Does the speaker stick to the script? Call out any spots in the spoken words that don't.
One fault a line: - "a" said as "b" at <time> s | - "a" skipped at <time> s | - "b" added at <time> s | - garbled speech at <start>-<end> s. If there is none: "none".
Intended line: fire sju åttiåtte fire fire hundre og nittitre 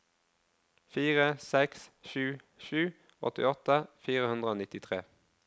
- "seks" added at 1.5 s
- "sju" added at 2.7 s
- "fire" skipped at 4.3 s